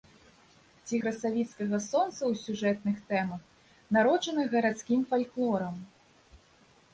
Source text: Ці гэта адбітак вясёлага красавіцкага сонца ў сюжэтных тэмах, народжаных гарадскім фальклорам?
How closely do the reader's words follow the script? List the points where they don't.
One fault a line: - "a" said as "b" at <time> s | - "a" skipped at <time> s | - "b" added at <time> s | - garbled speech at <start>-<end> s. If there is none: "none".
- "гэта адбітак вясёлага" skipped at 1.0 s